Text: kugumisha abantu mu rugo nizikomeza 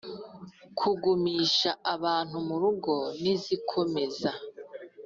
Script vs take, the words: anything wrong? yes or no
no